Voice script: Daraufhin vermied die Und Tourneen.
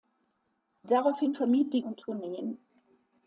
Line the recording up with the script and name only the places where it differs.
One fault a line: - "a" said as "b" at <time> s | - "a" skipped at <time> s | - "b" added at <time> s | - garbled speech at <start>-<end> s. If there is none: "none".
none